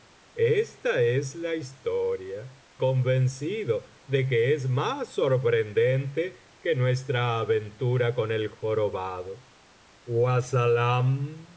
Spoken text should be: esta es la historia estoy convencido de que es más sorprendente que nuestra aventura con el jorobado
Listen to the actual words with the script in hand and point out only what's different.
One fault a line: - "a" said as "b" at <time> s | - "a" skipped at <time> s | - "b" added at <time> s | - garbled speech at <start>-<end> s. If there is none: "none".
- "estoy" skipped at 2.6 s